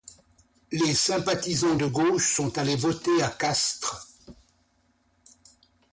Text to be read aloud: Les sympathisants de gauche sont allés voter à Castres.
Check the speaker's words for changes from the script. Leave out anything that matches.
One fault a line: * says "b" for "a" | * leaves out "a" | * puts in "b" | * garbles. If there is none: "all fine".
all fine